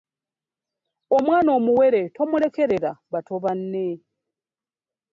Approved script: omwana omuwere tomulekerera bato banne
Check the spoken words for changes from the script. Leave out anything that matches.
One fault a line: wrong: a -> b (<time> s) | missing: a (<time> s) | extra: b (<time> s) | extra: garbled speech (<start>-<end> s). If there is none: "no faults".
no faults